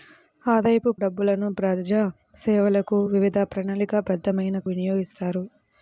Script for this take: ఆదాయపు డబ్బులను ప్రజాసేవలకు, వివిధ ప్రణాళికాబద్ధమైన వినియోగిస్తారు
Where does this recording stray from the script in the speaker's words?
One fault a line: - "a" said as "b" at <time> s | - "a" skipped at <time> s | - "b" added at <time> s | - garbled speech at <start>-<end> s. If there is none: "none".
none